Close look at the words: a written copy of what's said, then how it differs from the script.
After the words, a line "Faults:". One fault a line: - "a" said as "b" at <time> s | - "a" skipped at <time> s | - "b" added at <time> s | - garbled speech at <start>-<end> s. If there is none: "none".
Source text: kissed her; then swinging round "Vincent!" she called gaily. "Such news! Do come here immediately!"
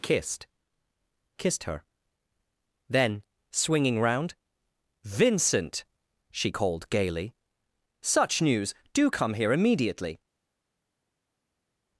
kissed kissed her; then swinging round "Vincent!" she called gaily. "Such news! Do come here immediately!"
Faults:
- "kissed" added at 1.4 s